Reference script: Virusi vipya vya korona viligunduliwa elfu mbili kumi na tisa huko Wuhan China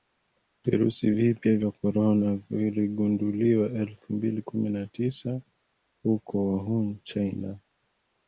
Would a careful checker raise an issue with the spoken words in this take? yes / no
no